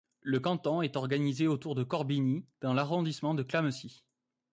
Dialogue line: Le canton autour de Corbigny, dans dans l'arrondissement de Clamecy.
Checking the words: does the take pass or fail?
fail